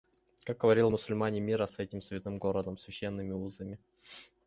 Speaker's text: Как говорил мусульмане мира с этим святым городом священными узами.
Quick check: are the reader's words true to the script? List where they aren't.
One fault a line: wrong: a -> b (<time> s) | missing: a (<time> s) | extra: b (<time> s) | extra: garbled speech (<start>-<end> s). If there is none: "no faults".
no faults